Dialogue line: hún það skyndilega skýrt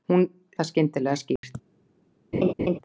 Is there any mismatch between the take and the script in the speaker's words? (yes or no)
no